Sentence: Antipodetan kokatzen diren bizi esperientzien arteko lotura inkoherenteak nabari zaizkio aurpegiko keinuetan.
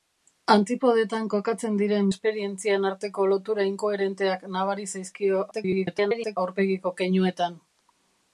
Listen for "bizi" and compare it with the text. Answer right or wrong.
wrong